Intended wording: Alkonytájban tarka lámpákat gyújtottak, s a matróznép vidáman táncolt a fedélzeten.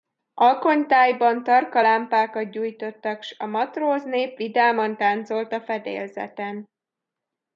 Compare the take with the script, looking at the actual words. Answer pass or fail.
pass